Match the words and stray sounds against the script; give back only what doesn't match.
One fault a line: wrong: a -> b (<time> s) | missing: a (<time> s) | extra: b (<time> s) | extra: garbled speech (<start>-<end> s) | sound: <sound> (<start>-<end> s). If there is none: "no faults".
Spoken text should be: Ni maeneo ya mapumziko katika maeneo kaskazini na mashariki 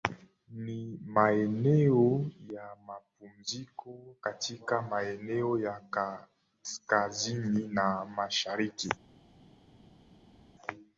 extra: ya (5.6 s)